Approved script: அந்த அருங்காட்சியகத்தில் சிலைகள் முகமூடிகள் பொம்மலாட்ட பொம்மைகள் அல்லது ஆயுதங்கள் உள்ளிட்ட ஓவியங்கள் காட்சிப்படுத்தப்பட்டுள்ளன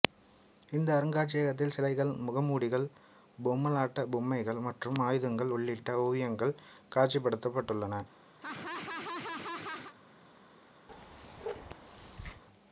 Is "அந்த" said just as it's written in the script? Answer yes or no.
no